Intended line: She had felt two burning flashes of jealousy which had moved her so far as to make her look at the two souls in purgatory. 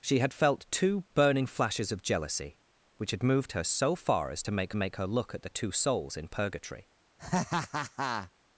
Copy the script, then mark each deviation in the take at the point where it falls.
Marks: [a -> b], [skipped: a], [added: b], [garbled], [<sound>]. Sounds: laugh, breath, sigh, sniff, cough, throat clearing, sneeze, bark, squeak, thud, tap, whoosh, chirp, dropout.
She had felt two burning flashes of jealousy which had moved her so far as to make [added: make] her look at the two souls in purgatory. [laugh]